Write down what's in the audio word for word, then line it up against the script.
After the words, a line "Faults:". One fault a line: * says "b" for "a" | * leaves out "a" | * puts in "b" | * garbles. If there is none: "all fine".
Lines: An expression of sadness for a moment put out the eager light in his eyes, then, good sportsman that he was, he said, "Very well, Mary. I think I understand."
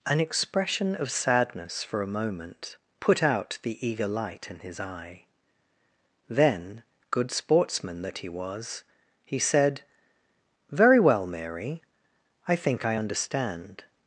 An expression of sadness for a moment put out the eager light in his eye, then, good sportsman that he was, he said, "Very well, Mary. I think I understand."
Faults:
* says "eye" for "eyes"